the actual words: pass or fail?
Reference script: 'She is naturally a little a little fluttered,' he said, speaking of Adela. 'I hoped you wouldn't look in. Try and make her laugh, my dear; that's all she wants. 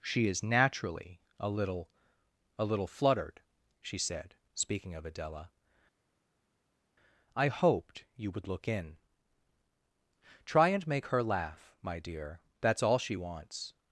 fail